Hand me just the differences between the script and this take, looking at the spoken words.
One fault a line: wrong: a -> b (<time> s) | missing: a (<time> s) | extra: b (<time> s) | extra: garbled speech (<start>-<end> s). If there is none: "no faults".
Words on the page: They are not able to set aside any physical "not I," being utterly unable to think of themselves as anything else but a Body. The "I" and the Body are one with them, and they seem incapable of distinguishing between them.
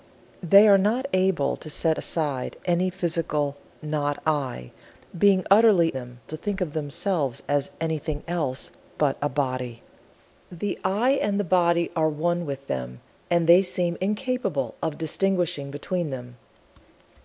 wrong: unable -> them (5.9 s)